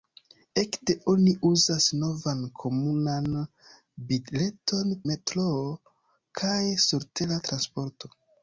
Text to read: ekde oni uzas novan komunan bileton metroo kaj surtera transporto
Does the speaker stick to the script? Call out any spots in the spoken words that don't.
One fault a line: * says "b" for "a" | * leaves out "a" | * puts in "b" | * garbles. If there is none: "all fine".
all fine